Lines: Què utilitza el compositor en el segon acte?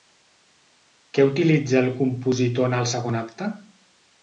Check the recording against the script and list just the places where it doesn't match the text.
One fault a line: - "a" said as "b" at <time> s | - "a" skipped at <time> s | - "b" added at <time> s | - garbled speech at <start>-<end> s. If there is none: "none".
none